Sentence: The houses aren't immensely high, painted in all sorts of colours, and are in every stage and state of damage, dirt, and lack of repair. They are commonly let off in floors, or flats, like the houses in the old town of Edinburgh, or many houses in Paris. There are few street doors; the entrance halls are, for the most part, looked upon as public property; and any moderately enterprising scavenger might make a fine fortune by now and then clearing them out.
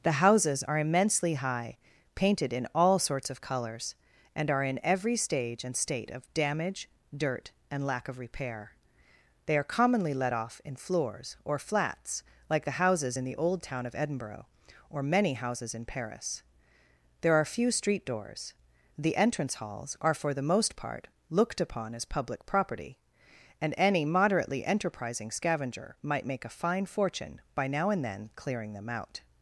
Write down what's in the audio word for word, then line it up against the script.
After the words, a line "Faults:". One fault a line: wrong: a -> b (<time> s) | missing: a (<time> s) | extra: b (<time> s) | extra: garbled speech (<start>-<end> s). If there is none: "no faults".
The houses are immensely high, painted in all sorts of colours, and are in every stage and state of damage, dirt, and lack of repair. They are commonly let off in floors, or flats, like the houses in the old town of Edinburgh, or many houses in Paris. There are few street doors; the entrance halls are, for the most part, looked upon as public property; and any moderately enterprising scavenger might make a fine fortune by now and then clearing them out.
Faults:
wrong: aren't -> are (0.6 s)